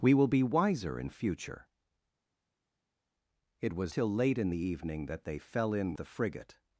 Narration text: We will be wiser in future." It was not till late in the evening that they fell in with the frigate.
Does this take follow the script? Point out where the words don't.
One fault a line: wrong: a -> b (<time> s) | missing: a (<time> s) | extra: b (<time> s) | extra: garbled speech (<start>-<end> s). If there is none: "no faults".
missing: not (3.9 s)
missing: with (5.9 s)